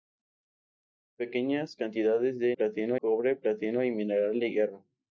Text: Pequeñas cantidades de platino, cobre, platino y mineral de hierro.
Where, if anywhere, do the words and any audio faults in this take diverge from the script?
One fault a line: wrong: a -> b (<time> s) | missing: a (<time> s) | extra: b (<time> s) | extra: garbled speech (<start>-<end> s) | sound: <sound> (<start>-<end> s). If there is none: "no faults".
no faults